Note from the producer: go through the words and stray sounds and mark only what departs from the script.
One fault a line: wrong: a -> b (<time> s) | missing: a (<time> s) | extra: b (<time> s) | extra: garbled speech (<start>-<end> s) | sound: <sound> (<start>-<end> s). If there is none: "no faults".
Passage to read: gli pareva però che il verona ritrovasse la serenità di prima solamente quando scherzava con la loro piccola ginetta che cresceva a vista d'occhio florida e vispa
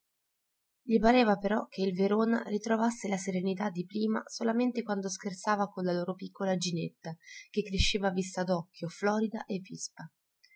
no faults